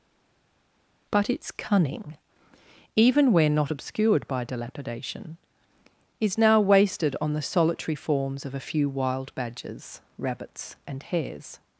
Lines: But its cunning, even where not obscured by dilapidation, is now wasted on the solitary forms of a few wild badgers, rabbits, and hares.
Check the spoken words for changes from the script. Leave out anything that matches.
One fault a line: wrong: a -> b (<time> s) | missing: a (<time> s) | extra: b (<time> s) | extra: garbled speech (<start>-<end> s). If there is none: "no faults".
no faults